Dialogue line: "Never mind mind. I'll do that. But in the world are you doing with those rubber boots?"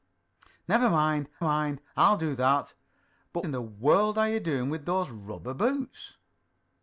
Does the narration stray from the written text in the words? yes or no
no